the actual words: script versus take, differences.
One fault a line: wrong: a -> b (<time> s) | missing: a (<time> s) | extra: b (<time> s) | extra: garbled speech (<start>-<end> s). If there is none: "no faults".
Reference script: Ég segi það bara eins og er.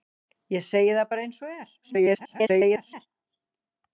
extra: garbled speech (1.8-3.1 s)